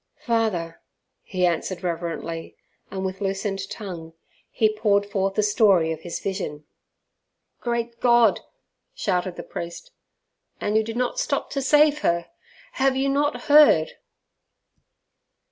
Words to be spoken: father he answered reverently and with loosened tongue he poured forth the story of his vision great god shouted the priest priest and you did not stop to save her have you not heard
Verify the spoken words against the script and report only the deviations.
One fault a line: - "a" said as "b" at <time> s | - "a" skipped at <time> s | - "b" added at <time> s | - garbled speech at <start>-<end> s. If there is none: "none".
- "priest" skipped at 9.9 s